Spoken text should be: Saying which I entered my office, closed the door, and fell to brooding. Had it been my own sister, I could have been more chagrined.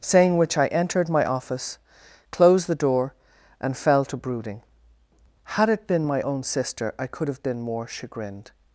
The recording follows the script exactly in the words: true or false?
true